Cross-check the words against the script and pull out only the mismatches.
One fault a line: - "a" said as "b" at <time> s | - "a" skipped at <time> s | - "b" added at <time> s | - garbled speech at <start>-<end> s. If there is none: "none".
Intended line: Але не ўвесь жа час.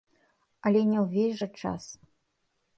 none